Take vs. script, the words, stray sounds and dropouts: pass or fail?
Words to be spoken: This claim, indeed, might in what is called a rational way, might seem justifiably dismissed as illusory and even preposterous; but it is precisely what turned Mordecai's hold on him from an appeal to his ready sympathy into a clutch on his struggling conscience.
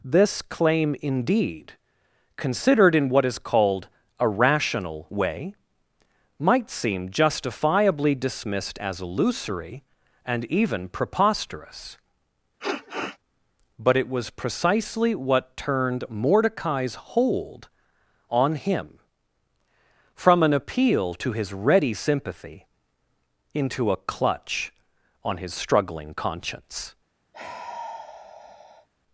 fail